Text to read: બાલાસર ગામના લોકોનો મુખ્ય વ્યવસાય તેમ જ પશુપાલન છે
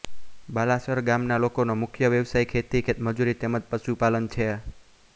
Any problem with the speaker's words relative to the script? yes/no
yes